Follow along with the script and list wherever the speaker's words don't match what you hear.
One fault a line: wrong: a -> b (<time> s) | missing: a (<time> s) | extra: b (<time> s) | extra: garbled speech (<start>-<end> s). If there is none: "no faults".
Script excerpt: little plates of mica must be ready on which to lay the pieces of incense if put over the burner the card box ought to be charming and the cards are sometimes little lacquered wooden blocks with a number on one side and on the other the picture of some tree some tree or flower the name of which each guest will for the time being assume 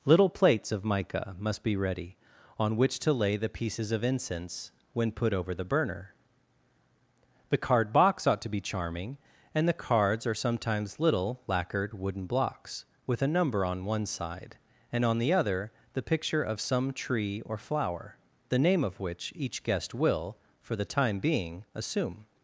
wrong: if -> when (4.9 s)
missing: some tree (17.4 s)